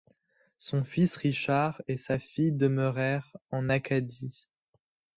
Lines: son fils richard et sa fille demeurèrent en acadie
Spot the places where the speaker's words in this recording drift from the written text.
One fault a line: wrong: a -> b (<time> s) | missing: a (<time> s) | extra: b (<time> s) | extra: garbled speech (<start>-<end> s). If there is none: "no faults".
no faults